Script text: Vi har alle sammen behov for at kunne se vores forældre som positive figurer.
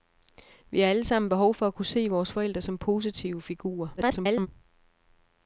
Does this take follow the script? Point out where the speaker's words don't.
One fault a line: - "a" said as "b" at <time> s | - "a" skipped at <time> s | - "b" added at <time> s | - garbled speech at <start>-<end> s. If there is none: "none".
- garbled speech at 4.0-4.5 s